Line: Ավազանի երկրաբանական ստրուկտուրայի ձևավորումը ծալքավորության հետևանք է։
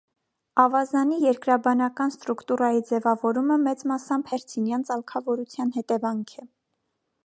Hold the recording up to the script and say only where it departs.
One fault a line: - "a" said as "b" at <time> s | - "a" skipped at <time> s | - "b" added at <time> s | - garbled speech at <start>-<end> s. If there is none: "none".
- "մեծ մասամբ հերցինյան" added at 3.7 s